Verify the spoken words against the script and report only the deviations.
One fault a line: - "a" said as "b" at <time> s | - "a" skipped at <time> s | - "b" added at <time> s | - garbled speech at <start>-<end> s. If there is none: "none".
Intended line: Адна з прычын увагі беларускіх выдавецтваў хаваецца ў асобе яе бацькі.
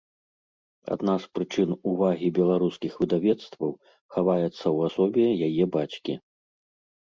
none